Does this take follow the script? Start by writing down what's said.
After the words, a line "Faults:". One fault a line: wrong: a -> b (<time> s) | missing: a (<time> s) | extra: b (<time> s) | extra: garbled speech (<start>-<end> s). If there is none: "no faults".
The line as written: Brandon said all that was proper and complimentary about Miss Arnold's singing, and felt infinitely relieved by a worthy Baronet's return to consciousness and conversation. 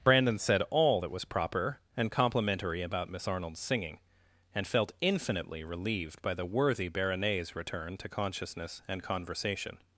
Brandon said all that was proper and complimentary about Miss Arnold's singing, and felt infinitely relieved by the worthy Baronet's return to consciousness and conversation.
Faults:
wrong: a -> the (6.3 s)